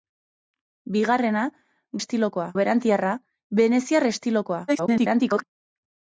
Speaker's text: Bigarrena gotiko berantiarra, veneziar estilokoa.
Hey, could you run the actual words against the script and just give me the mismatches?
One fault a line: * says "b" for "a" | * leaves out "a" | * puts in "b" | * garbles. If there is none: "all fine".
* says "estilokoa" for "gotiko"
* garbles